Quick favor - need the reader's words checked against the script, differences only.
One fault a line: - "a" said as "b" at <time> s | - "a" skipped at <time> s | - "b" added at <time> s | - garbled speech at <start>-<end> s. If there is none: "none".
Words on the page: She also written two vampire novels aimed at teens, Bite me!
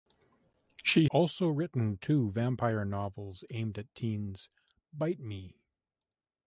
none